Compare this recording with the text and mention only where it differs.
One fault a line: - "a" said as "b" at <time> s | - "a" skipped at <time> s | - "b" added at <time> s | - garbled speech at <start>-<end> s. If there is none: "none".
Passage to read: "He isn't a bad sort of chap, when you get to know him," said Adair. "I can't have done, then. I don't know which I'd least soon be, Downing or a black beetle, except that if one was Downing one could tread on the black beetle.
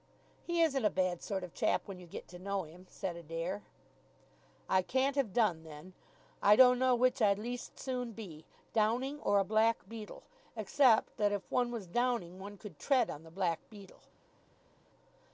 none